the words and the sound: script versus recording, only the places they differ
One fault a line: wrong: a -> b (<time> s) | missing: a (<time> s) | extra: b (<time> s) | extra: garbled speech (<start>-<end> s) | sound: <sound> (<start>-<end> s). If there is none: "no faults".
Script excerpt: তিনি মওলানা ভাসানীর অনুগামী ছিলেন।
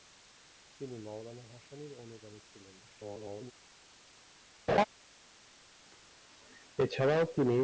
extra: garbled speech (2.8-3.5 s)
sound: laugh (4.7-4.8 s)